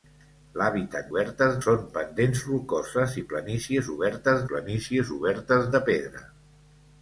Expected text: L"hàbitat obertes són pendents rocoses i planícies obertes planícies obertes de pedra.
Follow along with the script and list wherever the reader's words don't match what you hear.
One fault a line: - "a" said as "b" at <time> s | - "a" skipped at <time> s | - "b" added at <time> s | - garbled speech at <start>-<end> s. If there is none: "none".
none